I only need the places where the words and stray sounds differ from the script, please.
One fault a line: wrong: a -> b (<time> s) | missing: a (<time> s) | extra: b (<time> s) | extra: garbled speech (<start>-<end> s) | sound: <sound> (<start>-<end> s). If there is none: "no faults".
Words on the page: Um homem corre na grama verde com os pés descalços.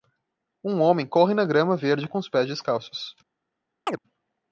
sound: chirp (3.9-4.0 s)